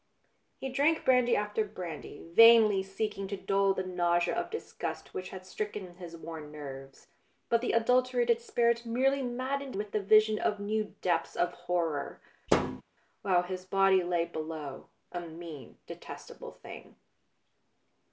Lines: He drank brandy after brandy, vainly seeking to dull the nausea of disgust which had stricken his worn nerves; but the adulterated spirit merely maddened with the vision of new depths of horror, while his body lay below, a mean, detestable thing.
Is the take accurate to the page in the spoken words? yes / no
yes